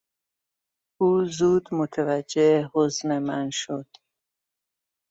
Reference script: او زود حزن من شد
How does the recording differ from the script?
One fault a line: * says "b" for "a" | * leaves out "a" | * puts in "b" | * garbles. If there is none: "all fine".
* puts in "متوجه"